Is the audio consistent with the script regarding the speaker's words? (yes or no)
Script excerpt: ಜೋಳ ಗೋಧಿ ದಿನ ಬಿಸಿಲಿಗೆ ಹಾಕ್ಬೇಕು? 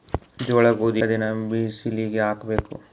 yes